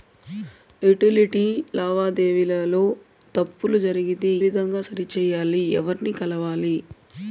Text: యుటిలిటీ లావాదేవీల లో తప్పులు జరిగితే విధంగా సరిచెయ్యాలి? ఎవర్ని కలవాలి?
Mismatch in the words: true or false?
false